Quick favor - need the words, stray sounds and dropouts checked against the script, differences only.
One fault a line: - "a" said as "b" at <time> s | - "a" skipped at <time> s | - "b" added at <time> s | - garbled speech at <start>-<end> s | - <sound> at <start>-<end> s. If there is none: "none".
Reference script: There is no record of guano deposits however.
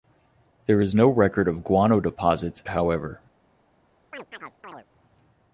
- chirp at 4.1-4.9 s